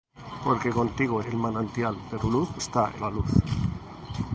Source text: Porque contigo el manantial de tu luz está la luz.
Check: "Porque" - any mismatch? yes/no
no